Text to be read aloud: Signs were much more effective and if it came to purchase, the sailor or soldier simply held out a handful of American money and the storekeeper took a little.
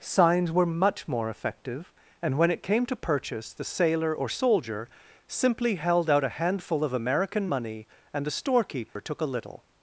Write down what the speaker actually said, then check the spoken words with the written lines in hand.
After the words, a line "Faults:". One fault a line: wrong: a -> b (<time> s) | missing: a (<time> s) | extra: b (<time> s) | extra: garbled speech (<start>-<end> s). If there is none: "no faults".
Signs were much more effective and when it came to purchase, the sailor or soldier simply held out a handful of American money and the storekeeper took a little.
Faults:
wrong: if -> when (2.4 s)